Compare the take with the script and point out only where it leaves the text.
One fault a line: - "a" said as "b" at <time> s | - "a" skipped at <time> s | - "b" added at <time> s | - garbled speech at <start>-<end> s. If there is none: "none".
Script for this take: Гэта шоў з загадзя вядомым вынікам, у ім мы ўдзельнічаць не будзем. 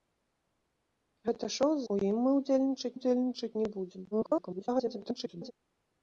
- "загадзя вядомым вынікам" skipped at 1.8 s
- "ўдзельнічаць" added at 2.9 s
- garbled speech at 4.1-5.5 s